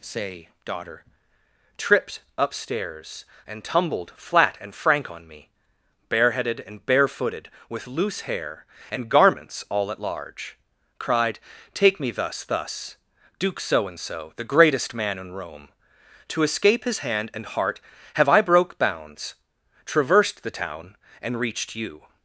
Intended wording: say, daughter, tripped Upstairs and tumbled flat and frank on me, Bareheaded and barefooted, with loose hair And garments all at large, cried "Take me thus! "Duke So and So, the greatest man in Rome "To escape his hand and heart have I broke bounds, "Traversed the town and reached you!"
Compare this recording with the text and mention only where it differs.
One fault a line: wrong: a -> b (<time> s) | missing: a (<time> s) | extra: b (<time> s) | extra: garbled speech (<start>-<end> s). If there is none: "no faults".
extra: thus (12.4 s)